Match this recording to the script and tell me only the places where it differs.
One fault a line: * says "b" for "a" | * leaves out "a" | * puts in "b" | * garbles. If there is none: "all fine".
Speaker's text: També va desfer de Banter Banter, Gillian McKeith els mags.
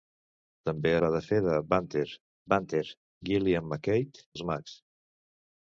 all fine